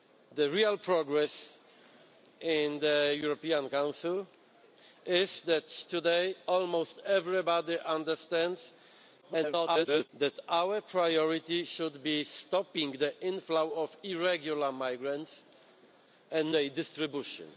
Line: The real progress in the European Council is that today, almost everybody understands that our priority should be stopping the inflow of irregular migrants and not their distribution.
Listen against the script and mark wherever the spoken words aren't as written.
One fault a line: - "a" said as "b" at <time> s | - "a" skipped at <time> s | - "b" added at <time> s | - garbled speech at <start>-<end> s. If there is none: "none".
- garbled speech at 9.2-10.1 s
- "not" skipped at 16.6 s